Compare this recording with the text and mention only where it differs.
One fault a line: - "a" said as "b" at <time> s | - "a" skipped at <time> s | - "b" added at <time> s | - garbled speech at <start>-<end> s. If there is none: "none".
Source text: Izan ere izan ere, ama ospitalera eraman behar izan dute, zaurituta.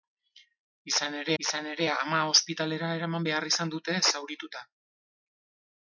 none